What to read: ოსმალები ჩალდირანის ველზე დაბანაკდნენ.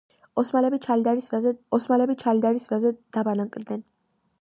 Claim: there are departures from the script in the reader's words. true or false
true